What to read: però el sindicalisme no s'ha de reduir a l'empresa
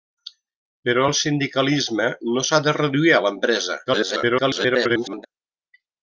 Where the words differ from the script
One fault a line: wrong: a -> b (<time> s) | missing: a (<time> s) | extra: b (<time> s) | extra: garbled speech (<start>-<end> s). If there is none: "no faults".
extra: garbled speech (3.9-5.3 s)